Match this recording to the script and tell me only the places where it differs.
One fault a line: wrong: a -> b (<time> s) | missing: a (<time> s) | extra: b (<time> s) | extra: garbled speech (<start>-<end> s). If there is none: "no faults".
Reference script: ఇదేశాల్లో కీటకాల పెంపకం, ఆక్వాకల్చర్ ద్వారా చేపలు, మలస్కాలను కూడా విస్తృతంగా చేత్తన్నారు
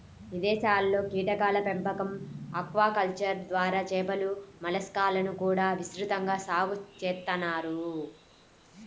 extra: సాగు (6.5 s)